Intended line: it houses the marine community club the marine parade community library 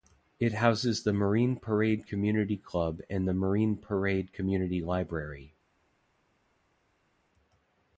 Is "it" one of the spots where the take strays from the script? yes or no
no